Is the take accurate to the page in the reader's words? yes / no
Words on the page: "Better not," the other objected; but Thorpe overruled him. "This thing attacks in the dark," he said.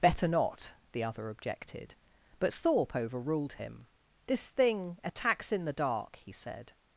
yes